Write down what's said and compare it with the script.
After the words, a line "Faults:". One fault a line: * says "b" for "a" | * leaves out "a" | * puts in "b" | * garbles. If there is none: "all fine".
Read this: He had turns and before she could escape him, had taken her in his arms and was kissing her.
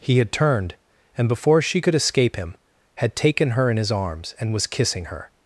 He had turned and before she could escape him, had taken her in his arms and was kissing her.
Faults:
* says "turned" for "turns"